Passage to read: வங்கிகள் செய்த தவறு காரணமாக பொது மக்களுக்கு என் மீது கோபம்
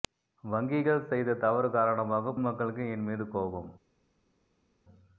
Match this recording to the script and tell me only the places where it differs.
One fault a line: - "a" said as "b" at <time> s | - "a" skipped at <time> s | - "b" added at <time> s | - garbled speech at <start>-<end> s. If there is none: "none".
- "பொது" skipped at 2.3 s